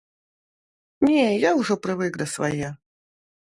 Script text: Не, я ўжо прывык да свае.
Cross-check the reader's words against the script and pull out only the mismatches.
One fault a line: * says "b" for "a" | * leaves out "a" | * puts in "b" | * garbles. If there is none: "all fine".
all fine